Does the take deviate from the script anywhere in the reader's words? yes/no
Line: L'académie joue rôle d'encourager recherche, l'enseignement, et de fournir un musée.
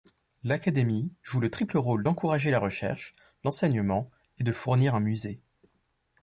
yes